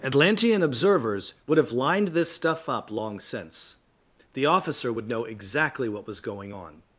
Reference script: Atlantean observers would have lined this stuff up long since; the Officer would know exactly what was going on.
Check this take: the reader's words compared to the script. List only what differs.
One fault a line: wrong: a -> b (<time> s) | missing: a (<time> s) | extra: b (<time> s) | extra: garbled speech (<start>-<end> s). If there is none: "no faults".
no faults